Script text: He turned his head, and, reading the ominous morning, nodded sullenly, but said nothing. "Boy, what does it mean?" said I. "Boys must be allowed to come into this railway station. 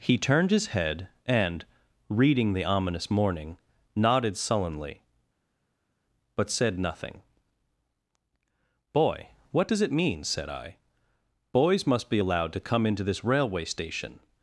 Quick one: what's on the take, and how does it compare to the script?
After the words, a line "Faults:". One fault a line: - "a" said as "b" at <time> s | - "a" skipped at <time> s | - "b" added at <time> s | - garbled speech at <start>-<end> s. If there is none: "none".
He turned his head, and, reading the ominous morning, nodded sullenly, but said nothing. "Boy, what does it mean?" said I. "Boys must be allowed to come into this railway station.
Faults:
none